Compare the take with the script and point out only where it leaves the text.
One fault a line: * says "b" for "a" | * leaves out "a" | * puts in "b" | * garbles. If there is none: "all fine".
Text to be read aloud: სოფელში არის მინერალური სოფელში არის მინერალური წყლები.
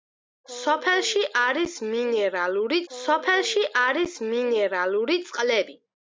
all fine